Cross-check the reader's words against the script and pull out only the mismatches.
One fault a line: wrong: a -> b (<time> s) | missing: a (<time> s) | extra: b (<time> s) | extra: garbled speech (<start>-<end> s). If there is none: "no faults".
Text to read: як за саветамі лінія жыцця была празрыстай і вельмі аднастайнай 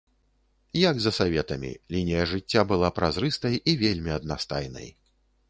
no faults